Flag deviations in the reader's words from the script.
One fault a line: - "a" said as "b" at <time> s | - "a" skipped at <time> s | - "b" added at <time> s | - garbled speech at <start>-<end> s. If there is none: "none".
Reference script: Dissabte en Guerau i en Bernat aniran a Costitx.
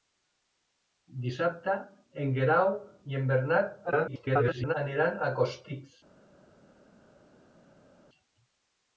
- garbled speech at 3.9-4.7 s